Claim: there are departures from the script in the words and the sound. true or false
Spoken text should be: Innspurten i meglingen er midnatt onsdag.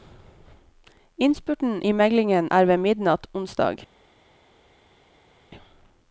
true